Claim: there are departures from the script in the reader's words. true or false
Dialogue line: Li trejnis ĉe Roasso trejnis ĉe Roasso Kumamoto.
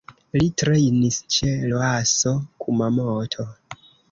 true